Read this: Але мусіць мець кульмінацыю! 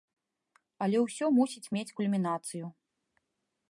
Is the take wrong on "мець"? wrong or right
right